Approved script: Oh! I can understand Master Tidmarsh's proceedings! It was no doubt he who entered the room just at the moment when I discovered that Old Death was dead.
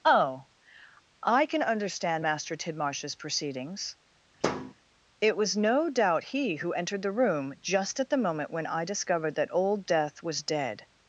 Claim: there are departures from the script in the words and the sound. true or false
true